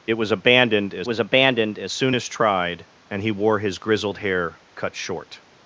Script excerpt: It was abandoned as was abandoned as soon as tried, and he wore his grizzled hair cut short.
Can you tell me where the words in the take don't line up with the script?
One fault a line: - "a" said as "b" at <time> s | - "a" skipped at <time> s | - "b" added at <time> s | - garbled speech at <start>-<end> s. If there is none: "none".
none